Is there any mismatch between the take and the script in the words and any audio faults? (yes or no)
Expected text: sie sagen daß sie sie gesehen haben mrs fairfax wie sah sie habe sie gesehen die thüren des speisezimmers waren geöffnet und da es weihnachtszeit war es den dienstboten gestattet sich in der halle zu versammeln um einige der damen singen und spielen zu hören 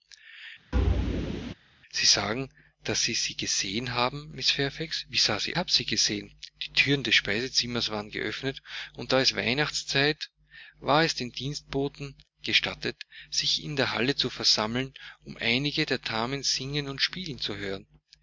yes